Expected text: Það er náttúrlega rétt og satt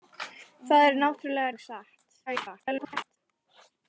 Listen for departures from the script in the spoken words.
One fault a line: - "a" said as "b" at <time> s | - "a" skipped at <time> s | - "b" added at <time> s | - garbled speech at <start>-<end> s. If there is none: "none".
- "rétt" skipped at 1.5 s
- garbled speech at 2.3-3.2 s